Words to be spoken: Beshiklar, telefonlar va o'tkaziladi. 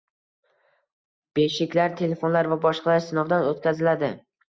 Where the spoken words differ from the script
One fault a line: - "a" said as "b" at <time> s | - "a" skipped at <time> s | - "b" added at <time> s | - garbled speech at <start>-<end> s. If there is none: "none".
- "boshqalar sinovdan" added at 2.7 s